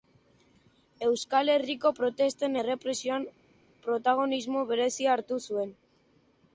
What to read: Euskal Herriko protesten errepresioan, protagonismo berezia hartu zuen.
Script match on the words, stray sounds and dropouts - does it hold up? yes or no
yes